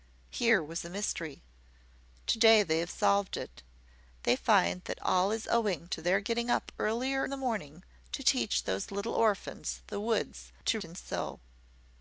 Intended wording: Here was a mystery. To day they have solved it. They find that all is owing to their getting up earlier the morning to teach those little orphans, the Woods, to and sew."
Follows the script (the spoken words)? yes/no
yes